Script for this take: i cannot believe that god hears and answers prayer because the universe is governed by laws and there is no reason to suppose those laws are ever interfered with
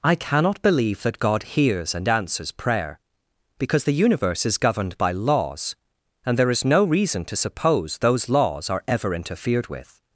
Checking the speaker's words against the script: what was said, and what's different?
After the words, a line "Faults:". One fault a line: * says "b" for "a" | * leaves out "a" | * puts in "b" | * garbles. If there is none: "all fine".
i cannot believe that god hears and answers prayer because the universe is governed by laws and there is no reason to suppose those laws are ever interfered with
Faults:
all fine